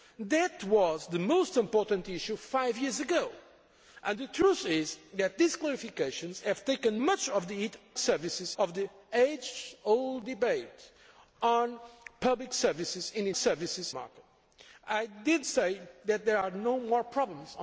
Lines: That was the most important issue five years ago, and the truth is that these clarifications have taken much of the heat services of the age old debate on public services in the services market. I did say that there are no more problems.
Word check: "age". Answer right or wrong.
right